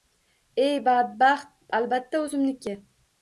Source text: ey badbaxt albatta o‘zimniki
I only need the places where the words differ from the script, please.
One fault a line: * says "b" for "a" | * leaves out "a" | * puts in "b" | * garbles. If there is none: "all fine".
all fine